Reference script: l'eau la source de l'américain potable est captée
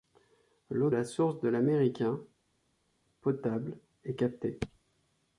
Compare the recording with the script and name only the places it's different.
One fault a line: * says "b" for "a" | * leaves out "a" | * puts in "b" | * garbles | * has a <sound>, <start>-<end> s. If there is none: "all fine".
all fine